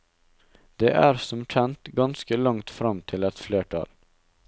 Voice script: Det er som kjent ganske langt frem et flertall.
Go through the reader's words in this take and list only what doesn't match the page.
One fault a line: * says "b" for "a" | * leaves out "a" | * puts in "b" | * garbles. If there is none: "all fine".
* puts in "til"